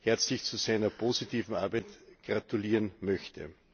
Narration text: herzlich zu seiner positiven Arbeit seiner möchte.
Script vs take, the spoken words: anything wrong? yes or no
yes